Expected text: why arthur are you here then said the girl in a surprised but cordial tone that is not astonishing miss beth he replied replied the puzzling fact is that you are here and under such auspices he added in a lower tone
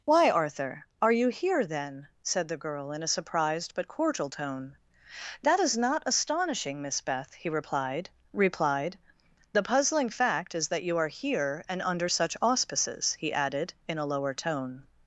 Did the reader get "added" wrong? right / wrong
right